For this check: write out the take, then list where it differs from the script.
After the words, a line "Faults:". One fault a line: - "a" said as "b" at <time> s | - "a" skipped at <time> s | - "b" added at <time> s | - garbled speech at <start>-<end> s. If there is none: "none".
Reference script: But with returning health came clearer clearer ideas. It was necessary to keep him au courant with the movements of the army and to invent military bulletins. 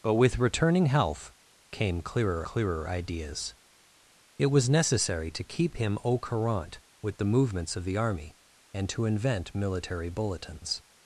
But with returning health came clearer clearer ideas. It was necessary to keep him au courant with the movements of the army and to invent military bulletins.
Faults:
none